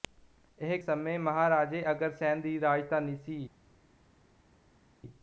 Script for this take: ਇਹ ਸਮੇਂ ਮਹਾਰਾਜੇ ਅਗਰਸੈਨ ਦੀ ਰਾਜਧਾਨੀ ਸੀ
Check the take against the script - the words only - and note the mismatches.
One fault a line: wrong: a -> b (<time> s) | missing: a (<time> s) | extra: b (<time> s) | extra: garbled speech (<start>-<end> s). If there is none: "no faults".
no faults